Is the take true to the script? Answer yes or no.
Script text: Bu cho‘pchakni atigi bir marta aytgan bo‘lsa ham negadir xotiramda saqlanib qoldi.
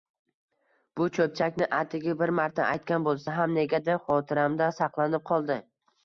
yes